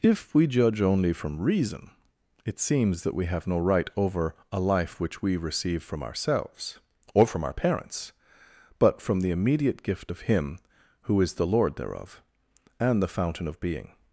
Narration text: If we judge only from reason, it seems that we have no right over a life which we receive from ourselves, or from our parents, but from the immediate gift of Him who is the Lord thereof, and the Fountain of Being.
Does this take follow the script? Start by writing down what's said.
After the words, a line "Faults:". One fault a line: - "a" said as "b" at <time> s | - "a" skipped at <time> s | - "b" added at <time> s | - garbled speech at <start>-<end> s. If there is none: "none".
If we judge only from reason, it seems that we have no right over a life which we receive from ourselves, or from our parents, but from the immediate gift of Him who is the Lord thereof, and the Fountain of Being.
Faults:
none